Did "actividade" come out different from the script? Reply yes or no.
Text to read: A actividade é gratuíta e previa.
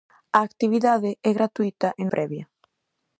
no